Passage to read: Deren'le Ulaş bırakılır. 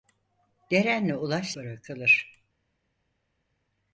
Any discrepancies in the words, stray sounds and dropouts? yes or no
no